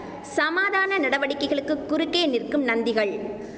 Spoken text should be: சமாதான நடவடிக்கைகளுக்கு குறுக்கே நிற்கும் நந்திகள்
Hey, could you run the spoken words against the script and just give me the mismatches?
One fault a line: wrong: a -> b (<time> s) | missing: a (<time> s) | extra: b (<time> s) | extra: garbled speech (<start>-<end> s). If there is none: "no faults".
no faults